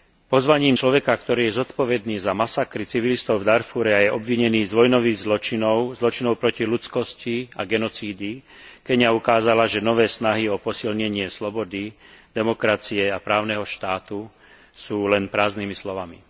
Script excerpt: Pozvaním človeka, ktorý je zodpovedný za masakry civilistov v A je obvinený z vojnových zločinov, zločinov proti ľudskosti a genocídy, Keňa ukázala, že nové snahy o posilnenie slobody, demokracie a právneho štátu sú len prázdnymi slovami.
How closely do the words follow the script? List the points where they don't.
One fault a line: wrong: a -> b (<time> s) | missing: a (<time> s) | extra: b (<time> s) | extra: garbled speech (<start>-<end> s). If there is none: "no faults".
extra: Darfúre (3.5 s)